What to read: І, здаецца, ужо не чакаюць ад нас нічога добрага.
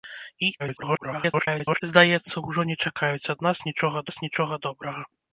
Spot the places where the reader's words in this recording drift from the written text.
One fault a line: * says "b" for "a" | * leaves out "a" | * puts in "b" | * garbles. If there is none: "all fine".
* garbles
* puts in "нас нічога"